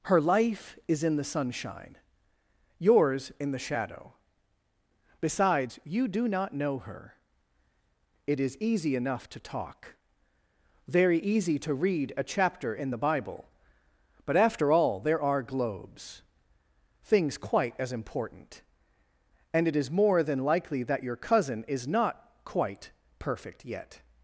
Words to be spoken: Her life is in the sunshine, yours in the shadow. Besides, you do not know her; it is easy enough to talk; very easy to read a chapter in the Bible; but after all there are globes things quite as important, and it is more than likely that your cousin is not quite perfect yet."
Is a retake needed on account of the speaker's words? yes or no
no